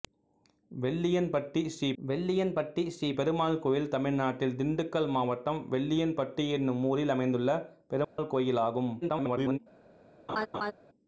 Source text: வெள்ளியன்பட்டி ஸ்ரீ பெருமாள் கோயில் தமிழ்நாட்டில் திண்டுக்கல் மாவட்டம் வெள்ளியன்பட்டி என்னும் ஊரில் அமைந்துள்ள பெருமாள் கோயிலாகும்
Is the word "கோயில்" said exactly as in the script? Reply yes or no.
yes